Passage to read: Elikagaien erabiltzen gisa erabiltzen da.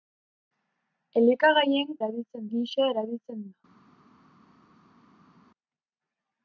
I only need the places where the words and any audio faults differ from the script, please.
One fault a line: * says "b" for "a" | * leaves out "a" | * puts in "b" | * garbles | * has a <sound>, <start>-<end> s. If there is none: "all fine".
all fine